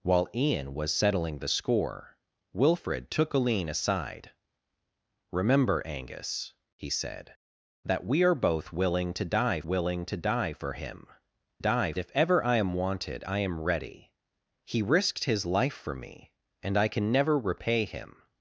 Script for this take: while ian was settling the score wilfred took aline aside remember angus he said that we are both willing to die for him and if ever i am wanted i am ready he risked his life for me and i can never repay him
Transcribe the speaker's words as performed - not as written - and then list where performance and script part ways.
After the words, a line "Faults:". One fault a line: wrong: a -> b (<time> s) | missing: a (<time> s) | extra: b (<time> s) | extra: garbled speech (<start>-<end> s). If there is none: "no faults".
while ian was settling the score wilfred took aline aside remember angus he said that we are both willing to die willing to die for him die if ever i am wanted i am ready he risked his life for me and i can never repay him
Faults:
extra: willing to die (9.6 s)
wrong: and -> die (11.6 s)